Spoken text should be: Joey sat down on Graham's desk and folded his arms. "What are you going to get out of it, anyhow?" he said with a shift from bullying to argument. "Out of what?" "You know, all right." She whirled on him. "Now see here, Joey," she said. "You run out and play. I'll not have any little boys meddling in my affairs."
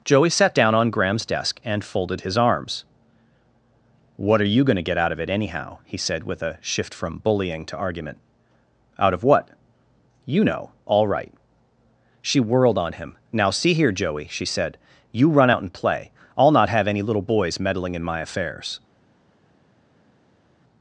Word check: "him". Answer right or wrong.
right